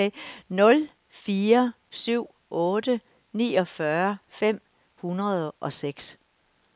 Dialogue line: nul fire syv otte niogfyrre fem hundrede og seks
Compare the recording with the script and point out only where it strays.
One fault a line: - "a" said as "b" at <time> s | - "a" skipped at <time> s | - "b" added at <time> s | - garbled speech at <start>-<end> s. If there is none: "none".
none